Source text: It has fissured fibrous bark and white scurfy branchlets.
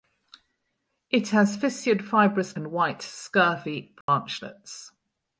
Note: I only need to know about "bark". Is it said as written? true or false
false